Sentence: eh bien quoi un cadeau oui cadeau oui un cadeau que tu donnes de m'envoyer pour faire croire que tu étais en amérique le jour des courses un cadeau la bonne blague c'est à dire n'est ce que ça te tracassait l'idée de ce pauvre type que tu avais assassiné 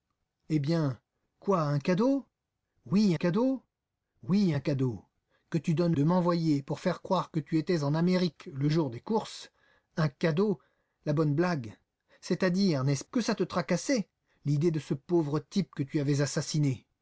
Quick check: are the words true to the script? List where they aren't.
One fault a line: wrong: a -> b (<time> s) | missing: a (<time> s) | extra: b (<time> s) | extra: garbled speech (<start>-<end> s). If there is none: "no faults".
no faults